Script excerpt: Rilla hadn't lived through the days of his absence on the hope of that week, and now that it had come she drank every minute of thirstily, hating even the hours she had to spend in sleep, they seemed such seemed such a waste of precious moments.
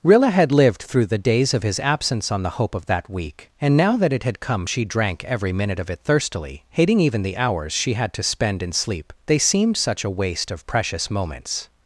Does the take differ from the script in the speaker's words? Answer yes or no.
yes